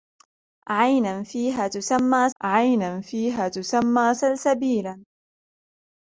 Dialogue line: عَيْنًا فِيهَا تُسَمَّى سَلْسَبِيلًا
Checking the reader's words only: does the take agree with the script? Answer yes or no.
no